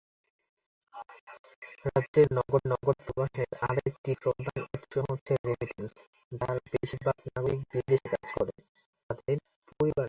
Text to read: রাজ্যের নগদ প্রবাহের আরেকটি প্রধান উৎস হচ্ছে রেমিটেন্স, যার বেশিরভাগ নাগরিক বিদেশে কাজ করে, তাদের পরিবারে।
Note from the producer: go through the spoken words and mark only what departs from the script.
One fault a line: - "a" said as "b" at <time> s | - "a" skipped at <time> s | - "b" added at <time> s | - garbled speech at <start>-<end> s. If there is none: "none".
- "নগদ" added at 2.7 s